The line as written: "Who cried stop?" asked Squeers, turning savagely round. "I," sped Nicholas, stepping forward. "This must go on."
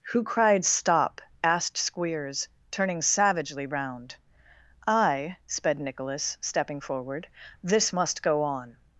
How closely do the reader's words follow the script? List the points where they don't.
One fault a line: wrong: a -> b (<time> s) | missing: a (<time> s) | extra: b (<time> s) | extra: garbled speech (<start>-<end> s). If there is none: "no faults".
no faults